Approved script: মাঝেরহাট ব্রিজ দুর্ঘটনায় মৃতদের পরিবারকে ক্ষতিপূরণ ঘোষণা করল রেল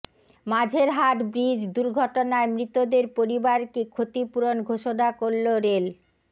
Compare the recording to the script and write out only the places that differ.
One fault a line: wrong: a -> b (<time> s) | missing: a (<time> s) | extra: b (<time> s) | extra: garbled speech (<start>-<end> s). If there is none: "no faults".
no faults